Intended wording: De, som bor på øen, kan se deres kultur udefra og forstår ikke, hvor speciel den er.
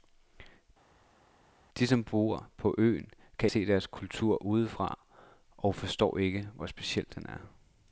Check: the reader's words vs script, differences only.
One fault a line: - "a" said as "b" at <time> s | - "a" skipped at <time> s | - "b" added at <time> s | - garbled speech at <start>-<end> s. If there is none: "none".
none